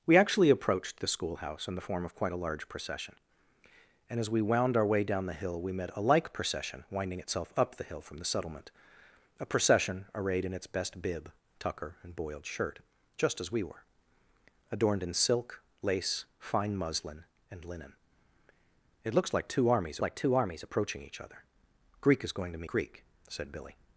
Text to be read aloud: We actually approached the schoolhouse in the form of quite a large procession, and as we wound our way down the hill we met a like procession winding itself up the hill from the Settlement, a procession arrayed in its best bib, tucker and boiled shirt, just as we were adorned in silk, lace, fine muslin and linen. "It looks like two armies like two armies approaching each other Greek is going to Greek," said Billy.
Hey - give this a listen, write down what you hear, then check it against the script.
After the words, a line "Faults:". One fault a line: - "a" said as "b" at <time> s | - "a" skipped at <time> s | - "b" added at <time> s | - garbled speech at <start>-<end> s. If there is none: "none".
We actually approached the schoolhouse in the form of quite a large procession, and as we wound our way down the hill we met a like procession winding itself up the hill from the Settlement, a procession arrayed in its best bib, tucker and boiled shirt, just as we were adorned in silk, lace, fine muslin and linen. "It looks like two armies like two armies approaching each other Greek is going to Greek," said Billy.
Faults:
none